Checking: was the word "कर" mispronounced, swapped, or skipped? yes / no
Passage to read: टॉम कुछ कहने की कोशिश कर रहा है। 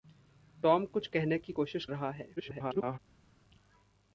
yes